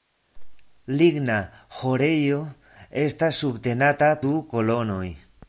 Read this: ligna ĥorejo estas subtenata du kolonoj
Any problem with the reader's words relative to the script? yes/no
no